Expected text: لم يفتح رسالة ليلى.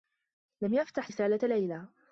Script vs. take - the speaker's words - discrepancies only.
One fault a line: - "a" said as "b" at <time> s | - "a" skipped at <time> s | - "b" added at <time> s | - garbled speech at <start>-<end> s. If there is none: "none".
none